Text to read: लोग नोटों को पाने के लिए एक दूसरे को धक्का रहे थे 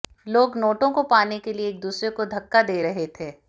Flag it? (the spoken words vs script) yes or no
yes